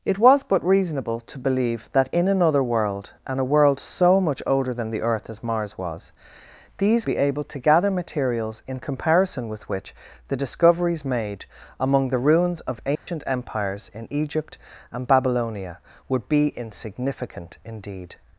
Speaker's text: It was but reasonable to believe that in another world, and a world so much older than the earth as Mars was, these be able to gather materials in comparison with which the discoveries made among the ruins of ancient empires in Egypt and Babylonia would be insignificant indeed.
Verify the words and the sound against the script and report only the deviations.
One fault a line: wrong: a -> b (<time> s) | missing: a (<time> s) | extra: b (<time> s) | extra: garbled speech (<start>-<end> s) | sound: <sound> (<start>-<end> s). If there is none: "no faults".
sound: dropout (13.0-13.1 s)